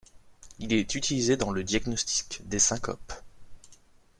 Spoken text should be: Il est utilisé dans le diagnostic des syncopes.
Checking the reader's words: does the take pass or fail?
pass